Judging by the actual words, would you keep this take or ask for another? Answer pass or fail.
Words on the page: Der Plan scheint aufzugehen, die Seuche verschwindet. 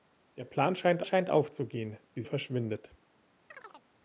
fail